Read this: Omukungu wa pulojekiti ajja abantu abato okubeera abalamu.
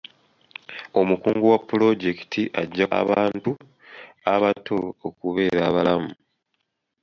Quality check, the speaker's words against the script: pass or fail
pass